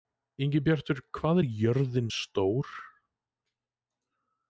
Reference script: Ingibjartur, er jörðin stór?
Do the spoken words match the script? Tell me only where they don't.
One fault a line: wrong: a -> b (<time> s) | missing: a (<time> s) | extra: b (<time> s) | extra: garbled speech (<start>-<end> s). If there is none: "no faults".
extra: hvað (1.2 s)